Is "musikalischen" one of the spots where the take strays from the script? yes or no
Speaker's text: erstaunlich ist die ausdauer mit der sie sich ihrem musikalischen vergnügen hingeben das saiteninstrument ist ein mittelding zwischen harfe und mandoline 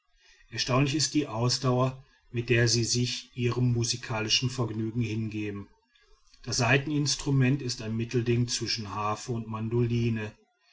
no